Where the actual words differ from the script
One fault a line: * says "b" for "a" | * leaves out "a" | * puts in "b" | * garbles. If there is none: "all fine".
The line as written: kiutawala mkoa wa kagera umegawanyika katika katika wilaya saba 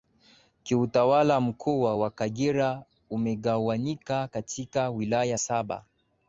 * leaves out "katika"